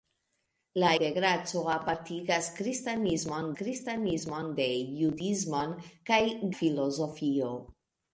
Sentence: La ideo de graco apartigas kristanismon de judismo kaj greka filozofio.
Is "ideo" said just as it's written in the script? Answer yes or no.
no